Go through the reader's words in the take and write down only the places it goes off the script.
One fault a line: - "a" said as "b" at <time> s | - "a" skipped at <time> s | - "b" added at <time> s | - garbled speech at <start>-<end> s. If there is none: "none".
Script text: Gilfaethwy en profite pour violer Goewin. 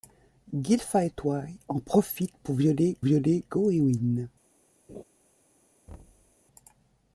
- "violer" added at 3.0 s